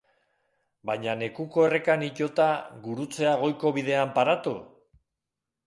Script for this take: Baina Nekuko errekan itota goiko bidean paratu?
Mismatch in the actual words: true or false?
true